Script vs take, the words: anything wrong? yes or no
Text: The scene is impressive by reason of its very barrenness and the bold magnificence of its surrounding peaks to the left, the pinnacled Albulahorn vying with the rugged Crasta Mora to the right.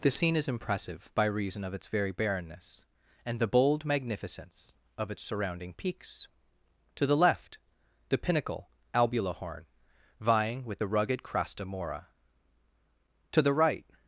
yes